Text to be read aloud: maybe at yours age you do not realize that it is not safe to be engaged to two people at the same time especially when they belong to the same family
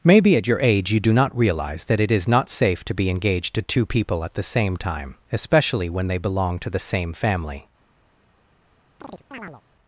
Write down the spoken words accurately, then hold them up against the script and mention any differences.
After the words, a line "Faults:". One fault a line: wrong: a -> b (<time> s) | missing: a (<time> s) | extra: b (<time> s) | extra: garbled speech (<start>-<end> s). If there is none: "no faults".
maybe at your age you do not realize that it is not safe to be engaged to two people at the same time especially when they belong to the same family
Faults:
wrong: yours -> your (0.5 s)